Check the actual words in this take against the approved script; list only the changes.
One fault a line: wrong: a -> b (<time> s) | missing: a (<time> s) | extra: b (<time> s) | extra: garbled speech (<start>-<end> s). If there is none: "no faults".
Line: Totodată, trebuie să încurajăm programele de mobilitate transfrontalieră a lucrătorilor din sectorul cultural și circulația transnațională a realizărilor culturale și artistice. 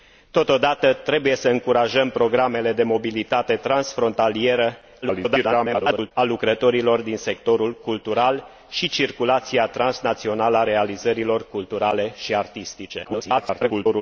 extra: garbled speech (5.0-6.1 s)
extra: garbled speech (13.0-14.0 s)